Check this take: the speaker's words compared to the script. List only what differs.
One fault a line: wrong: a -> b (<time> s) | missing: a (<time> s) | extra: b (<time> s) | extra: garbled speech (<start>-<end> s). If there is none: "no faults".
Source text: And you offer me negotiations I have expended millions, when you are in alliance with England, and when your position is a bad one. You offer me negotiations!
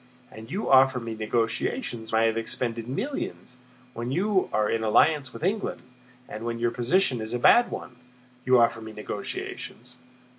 no faults